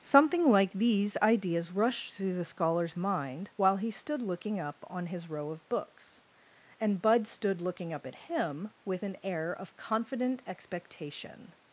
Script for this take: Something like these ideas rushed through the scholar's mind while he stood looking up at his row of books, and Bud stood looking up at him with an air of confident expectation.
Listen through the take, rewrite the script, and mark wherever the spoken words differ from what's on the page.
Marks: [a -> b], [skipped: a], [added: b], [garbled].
Something like these ideas rushed through the scholar's mind while he stood looking up [at -> on] his row of books, and Bud stood looking up at him with an air of confident expectation.